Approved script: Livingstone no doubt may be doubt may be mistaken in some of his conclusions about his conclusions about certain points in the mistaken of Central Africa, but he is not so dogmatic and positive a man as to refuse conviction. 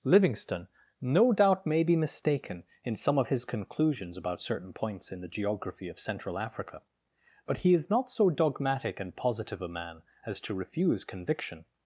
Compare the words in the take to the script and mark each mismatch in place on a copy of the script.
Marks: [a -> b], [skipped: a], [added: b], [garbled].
Livingstone no doubt may be [skipped: doubt may be] mistaken in some of his conclusions about [skipped: his conclusions about] certain points in the [mistaken -> geography] of Central Africa, but he is not so dogmatic and positive a man as to refuse conviction.